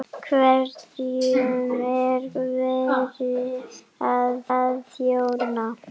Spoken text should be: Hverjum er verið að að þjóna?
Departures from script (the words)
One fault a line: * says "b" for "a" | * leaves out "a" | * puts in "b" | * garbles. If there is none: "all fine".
all fine